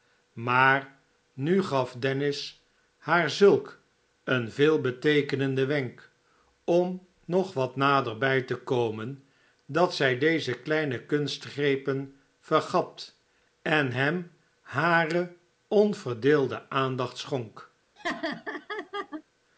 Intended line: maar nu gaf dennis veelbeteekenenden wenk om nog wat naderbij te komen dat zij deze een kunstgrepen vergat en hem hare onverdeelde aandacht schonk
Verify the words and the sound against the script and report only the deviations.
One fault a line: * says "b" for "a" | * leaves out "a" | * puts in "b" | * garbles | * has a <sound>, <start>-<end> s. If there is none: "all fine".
* puts in "haar zulk een"
* says "kleine" for "een"
* has a laugh, 18.0-19.2 s